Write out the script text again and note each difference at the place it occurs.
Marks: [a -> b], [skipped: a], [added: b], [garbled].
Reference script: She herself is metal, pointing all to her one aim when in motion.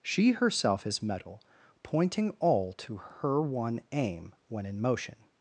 She herself is metal, pointing all to her one aim when in motion.